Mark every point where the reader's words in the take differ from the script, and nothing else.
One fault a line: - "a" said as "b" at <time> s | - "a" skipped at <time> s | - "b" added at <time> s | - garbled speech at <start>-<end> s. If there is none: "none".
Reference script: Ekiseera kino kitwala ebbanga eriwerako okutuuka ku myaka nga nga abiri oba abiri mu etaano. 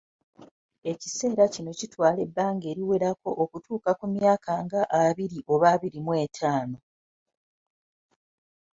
- "nga" skipped at 4.8 s